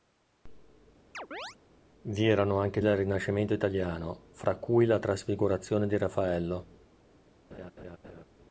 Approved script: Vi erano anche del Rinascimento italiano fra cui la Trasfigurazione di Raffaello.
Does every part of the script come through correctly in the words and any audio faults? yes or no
no